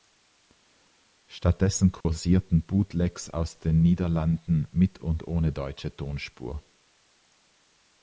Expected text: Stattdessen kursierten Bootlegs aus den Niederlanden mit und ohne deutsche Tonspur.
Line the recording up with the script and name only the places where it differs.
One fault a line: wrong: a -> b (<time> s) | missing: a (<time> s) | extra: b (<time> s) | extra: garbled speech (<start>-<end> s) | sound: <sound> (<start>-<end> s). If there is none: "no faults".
sound: dropout (2.0-2.1 s)